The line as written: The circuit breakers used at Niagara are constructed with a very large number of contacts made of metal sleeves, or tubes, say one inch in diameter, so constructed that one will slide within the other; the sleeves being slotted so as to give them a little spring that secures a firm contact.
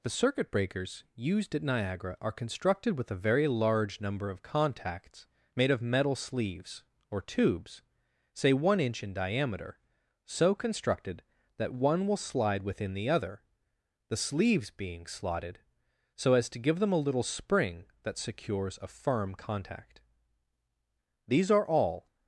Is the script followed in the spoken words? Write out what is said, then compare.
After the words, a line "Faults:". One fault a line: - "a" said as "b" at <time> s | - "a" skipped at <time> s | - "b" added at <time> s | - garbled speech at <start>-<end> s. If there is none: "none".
The circuit breakers used at Niagara are constructed with a very large number of contacts made of metal sleeves, or tubes, say one inch in diameter, so constructed that one will slide within the other; the sleeves being slotted so as to give them a little spring that secures a firm contact. These are all
Faults:
- "These are all" added at 21.3 s